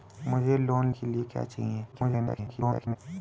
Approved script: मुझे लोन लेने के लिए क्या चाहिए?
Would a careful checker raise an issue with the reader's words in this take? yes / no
yes